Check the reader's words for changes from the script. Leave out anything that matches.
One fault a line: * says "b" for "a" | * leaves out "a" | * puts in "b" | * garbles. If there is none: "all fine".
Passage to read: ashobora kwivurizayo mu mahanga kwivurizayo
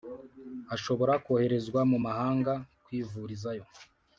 * says "koherezwa" for "kwivurizayo"